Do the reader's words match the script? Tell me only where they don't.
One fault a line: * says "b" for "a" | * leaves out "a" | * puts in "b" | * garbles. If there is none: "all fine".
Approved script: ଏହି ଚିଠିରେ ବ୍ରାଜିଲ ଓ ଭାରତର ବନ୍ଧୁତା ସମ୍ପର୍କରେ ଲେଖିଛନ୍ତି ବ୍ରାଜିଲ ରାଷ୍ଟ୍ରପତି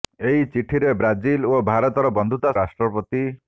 * leaves out "ସମ୍ପର୍କରେ ଲେଖିଛନ୍ତି ବ୍ରାଜିଲ"